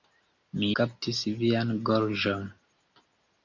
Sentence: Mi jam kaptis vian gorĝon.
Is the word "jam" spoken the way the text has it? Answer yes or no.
no